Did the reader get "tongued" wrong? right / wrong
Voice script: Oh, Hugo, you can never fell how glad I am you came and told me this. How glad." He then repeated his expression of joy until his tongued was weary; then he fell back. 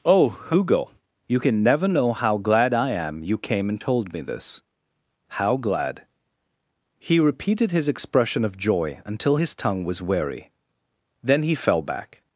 wrong